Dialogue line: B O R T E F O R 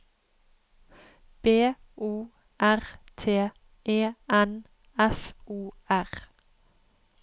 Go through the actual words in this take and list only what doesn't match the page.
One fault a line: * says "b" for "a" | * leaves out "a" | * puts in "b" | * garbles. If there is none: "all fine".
* puts in "N"